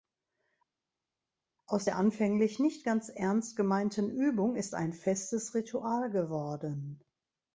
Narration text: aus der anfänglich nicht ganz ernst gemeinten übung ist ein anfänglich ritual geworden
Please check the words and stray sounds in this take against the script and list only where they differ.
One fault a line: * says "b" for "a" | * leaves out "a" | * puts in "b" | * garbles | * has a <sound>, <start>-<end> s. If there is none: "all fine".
* says "festes" for "anfänglich"